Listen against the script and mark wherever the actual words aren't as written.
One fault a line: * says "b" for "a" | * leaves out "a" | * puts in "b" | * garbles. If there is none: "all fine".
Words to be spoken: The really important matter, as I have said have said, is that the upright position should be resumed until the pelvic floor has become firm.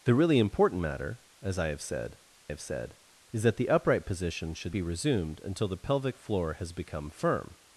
all fine